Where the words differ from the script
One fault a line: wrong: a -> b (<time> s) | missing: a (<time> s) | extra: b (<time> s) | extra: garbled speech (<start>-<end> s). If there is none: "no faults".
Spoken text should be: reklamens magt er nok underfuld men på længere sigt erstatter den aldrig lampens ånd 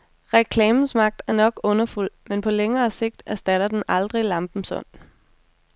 no faults